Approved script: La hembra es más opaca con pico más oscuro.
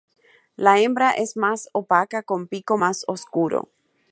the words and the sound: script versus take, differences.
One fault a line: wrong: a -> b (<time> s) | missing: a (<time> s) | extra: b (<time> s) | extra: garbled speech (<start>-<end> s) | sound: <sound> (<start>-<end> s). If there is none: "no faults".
no faults